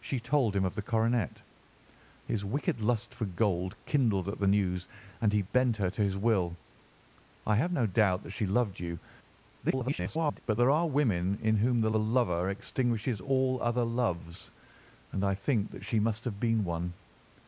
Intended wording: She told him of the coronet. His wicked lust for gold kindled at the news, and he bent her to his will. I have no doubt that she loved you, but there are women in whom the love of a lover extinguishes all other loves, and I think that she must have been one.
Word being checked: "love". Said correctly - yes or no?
no